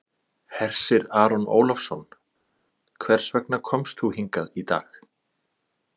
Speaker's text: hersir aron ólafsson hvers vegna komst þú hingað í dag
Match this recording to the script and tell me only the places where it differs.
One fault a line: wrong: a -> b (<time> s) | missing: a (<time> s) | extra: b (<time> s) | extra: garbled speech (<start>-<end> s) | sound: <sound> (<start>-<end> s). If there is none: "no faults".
no faults